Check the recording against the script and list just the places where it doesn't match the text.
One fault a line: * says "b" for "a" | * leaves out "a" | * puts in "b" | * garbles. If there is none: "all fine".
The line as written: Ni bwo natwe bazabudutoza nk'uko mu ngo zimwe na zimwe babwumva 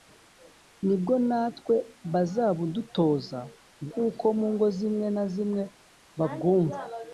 all fine